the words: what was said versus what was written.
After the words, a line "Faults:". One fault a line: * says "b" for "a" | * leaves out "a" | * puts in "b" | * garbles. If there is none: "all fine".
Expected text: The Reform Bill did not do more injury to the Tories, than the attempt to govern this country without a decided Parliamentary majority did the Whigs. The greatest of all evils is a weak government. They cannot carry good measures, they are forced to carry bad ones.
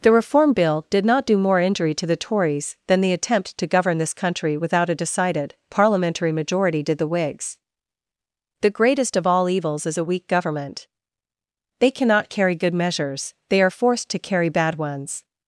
The Reform Bill did not do more injury to the Tories, than the attempt to govern this country without a decided Parliamentary majority did the Whigs. The greatest of all evils is a weak government. They cannot carry good measures, they are forced to carry bad ones.
Faults:
all fine